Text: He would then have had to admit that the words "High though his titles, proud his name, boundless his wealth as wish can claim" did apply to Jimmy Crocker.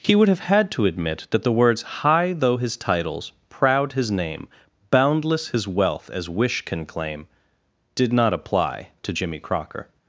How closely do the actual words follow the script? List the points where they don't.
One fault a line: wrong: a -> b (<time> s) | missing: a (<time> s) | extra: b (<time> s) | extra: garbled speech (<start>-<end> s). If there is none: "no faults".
missing: then (0.3 s)
extra: not (8.1 s)